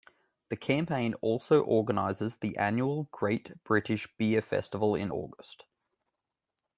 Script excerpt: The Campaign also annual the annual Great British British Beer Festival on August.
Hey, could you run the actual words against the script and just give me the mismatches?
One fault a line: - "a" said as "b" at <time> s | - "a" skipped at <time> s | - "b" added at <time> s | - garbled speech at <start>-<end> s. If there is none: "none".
- "annual" said as "organises" at 1.6 s
- "British" skipped at 4.1 s
- "on" said as "in" at 5.0 s